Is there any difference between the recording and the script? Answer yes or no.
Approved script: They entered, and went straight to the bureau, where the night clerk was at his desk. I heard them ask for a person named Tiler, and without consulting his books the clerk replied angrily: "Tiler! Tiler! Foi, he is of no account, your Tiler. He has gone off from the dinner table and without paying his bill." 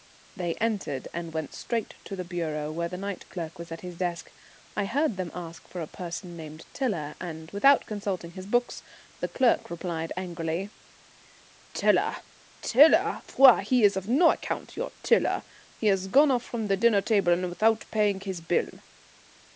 no